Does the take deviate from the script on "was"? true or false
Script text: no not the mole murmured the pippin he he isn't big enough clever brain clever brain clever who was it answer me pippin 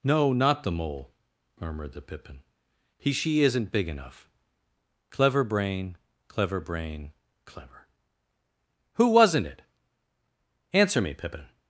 true